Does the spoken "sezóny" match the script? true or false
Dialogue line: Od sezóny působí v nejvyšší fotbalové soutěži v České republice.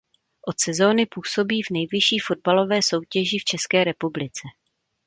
true